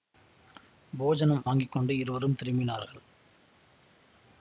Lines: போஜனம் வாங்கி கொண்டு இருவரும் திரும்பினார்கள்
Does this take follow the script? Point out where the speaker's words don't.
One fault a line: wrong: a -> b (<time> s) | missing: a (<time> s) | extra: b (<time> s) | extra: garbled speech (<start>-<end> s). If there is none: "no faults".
no faults